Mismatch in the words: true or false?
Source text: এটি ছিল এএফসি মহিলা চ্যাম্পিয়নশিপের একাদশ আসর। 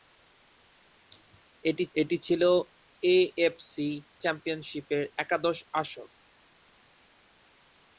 true